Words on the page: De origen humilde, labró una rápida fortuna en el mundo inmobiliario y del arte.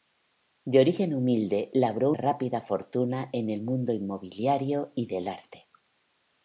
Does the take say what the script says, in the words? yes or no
no